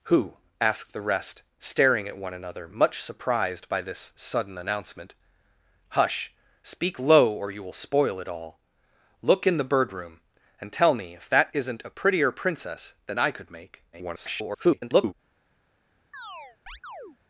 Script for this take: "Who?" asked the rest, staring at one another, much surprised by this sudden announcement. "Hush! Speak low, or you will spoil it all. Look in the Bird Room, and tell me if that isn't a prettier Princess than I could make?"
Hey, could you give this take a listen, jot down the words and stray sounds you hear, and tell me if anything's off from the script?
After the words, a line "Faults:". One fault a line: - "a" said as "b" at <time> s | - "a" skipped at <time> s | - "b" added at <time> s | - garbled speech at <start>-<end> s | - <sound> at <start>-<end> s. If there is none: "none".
"Who?" asked the rest, staring at one another, much surprised by this sudden announcement. "Hush! Speak low, or you will spoil it all. Look in the Bird Room, and tell me if that isn't a prettier Princess than I could make?" [garbled]
Faults:
- garbled speech at 13.9-15.1 s
- chirp at 16.1-17.2 s